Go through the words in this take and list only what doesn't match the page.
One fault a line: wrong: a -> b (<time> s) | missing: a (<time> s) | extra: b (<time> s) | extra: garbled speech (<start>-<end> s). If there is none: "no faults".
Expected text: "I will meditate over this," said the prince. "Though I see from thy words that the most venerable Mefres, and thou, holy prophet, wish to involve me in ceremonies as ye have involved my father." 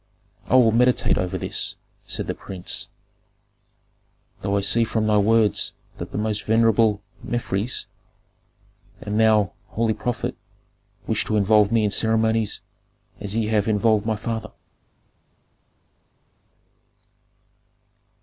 no faults